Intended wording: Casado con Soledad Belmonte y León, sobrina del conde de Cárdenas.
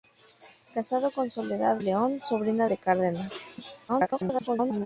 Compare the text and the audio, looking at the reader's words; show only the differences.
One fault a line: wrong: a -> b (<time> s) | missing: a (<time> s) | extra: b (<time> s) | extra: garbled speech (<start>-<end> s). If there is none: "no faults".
missing: Belmonte (1.8 s)
missing: del conde (2.7 s)
extra: garbled speech (3.9-4.9 s)